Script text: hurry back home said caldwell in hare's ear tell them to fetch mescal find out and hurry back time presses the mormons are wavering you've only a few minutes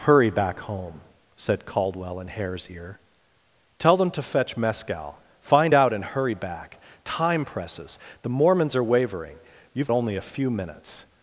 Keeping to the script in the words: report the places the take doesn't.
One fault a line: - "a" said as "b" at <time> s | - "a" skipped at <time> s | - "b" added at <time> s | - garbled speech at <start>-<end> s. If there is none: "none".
none